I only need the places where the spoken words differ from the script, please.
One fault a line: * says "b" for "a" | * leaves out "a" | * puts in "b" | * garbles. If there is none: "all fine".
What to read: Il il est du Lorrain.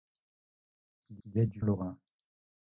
all fine